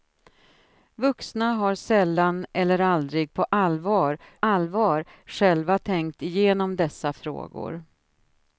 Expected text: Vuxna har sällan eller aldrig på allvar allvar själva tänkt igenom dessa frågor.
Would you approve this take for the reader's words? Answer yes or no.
yes